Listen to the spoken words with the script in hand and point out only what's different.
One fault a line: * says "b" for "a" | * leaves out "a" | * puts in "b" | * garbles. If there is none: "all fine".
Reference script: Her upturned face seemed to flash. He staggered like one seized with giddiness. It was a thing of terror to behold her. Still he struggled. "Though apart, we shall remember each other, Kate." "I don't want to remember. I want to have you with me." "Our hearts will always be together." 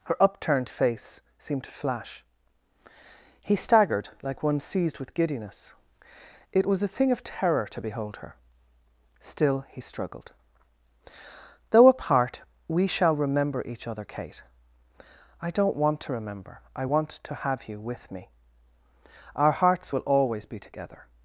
all fine